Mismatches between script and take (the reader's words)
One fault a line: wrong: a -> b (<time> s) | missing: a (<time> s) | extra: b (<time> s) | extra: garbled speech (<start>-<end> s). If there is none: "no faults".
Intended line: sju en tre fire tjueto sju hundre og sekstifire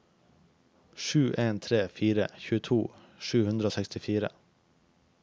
no faults